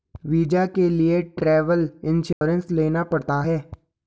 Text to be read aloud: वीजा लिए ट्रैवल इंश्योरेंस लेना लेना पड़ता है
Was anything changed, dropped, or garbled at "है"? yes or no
no